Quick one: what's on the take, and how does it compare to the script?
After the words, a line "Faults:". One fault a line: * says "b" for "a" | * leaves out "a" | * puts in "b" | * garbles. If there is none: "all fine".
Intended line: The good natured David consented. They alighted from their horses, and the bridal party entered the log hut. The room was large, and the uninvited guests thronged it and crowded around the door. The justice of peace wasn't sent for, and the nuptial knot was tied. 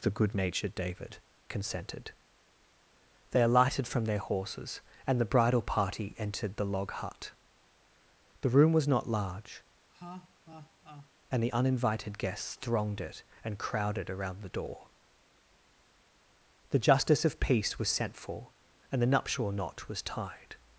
The good natured David consented. They alighted from their horses, and the bridal party entered the log hut. The room was not large, and the uninvited guests thronged it and crowded around the door. The justice of peace was sent for, and the nuptial knot was tied.
Faults:
* puts in "not"
* says "was" for "wasn't"